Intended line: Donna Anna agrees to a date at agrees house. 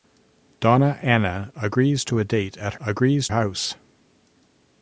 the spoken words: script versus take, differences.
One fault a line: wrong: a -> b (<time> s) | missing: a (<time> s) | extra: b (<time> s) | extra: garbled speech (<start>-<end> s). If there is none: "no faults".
no faults